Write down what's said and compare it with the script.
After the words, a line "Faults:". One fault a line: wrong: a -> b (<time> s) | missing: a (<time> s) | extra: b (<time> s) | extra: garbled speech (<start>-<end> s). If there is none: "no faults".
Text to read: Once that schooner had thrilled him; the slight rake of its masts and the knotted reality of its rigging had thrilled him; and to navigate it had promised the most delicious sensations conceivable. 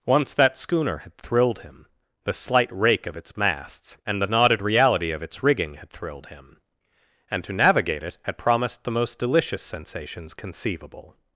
Once that schooner had thrilled him; the slight rake of its masts and the knotted reality of its rigging had thrilled him; and to navigate it had promised the most delicious sensations conceivable.
Faults:
no faults